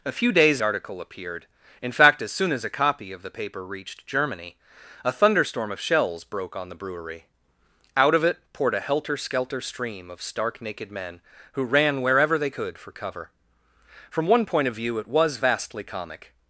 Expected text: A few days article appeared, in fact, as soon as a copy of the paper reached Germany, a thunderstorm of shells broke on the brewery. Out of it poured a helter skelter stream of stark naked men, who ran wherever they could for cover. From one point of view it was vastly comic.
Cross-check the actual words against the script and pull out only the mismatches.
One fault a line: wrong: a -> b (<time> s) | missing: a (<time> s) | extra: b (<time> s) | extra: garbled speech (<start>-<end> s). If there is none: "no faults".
no faults